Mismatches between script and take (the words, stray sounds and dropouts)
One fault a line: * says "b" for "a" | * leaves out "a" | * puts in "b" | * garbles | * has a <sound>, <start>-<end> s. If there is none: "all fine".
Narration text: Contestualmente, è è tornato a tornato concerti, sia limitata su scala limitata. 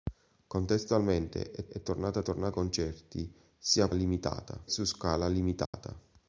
* has a dropout, 5.7-5.7 s